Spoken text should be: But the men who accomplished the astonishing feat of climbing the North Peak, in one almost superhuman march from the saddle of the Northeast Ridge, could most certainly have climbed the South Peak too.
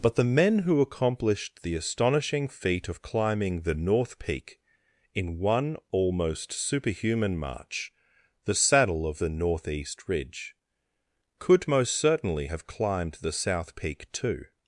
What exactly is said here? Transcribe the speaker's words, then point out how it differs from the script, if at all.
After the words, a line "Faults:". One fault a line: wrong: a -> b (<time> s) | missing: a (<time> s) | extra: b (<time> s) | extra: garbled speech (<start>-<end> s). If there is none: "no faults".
But the men who accomplished the astonishing feat of climbing the North Peak, in one almost superhuman march the saddle of the Northeast Ridge, could most certainly have climbed the South Peak too.
Faults:
missing: from (7.9 s)